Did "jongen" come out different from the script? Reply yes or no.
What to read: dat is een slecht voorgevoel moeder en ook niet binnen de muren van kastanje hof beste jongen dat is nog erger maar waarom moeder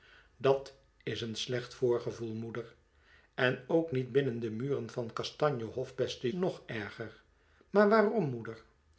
yes